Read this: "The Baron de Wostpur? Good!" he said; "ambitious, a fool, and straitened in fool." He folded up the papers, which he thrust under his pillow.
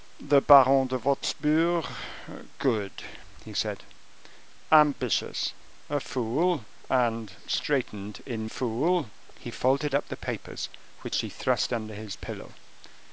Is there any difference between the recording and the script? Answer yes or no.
no